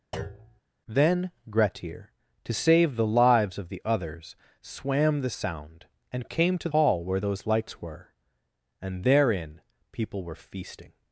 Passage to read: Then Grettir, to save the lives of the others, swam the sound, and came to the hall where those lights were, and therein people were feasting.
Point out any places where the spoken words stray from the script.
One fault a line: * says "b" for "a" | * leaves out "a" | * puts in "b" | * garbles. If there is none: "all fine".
* leaves out "the"